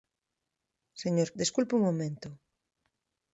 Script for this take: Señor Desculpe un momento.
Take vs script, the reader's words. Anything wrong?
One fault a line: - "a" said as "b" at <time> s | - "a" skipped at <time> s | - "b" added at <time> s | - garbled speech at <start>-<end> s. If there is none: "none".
none